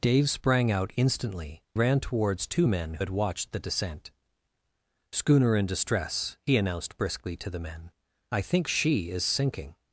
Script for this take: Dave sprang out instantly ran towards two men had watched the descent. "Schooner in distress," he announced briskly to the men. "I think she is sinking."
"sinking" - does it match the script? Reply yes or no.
yes